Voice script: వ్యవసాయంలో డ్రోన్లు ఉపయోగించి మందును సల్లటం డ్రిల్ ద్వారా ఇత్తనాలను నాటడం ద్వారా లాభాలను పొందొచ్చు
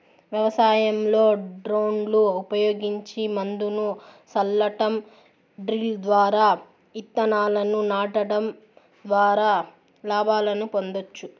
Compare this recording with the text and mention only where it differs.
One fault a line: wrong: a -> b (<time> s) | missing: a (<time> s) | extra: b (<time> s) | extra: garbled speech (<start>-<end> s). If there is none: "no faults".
no faults